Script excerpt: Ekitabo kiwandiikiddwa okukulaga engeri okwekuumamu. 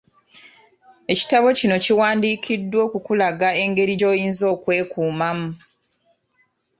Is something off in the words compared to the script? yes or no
yes